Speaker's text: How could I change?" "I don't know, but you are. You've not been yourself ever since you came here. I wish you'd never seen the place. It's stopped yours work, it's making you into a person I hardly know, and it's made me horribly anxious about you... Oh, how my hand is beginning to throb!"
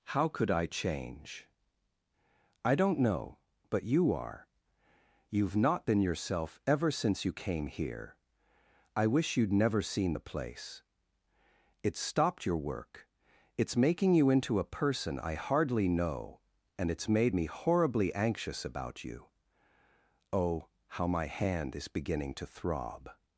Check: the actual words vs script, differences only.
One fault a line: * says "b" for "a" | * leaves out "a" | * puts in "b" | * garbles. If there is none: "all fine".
* says "your" for "yours"